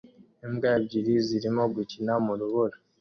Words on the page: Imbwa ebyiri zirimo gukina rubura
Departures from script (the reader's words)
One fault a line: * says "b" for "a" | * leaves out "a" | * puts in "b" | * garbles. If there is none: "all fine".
* puts in "mu"